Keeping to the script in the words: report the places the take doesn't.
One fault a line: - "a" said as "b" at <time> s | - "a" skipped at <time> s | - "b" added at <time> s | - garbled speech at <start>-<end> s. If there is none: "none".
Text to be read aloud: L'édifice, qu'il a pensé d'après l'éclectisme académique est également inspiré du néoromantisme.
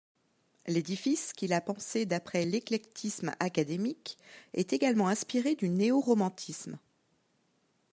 none